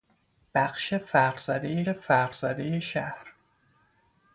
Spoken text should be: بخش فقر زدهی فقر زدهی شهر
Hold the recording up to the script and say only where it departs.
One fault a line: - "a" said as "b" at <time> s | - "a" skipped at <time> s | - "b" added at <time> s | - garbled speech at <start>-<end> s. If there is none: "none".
none